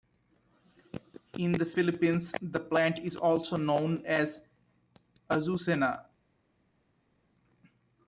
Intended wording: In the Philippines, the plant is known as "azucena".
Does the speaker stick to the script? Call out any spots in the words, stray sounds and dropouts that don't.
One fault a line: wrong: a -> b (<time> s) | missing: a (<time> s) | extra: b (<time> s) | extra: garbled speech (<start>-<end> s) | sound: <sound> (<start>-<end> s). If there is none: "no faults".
extra: also (3.1 s)